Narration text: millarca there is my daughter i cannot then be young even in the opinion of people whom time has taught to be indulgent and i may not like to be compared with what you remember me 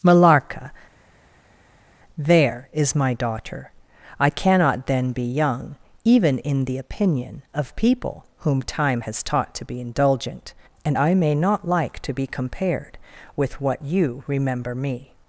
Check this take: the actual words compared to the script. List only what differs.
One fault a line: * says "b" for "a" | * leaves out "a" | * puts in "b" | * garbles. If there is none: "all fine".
all fine